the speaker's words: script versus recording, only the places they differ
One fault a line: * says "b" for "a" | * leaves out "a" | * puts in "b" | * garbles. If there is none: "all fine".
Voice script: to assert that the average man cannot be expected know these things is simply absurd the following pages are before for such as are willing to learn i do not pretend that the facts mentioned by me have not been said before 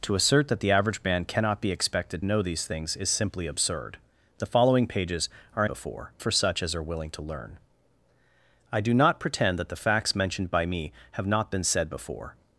all fine